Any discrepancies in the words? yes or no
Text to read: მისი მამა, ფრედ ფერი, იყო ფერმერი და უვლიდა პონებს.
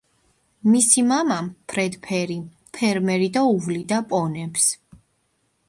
yes